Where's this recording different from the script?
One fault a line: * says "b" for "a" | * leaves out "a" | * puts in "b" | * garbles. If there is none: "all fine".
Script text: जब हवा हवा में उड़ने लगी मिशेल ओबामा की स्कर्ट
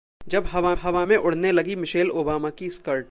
all fine